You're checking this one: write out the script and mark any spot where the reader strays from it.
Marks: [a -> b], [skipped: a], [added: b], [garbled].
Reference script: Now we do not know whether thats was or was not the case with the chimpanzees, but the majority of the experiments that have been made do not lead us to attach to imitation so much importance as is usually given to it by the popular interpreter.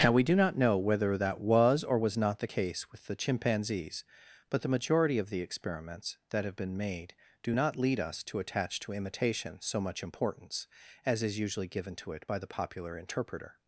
Now we do not know whether [thats -> that] was or was not the case with the chimpanzees, but the majority of the experiments that have been made do not lead us to attach to imitation so much importance as is usually given to it by the popular interpreter.